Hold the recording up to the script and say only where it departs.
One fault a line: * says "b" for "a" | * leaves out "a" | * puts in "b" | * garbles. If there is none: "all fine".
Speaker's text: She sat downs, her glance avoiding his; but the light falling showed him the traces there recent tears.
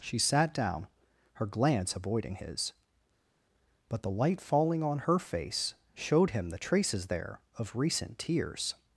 * says "down" for "downs"
* puts in "on her face"
* puts in "of"